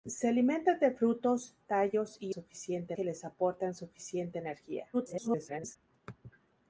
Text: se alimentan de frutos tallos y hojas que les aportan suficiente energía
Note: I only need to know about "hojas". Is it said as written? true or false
false